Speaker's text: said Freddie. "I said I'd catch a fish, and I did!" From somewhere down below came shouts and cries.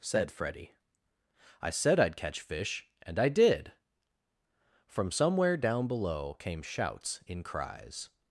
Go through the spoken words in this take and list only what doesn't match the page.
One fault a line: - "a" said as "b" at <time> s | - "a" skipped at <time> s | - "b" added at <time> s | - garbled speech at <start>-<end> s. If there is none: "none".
- "a" skipped at 2.4 s
- "and" said as "in" at 7.2 s